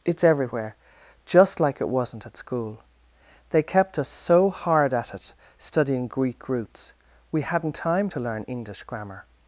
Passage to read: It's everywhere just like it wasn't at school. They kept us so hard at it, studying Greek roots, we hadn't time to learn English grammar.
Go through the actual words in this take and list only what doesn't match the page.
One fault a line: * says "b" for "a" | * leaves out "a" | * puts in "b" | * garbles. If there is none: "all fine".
all fine